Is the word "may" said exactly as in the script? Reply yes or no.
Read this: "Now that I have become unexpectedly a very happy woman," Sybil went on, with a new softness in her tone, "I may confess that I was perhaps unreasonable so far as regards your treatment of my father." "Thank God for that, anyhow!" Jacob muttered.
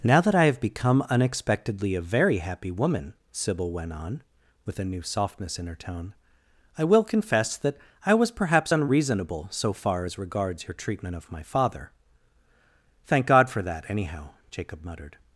no